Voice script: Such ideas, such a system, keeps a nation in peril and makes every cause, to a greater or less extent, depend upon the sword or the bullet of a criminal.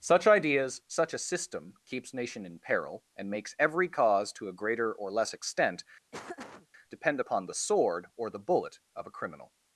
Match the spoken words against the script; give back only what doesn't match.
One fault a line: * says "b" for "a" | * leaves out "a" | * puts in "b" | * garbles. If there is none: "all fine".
* leaves out "a"